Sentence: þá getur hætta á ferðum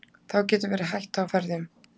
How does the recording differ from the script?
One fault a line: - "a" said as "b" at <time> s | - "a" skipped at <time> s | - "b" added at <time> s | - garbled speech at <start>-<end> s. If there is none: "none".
- "verið" added at 0.7 s